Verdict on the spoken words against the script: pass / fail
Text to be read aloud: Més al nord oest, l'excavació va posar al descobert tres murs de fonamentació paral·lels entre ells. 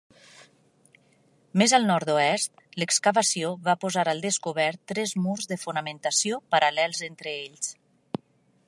pass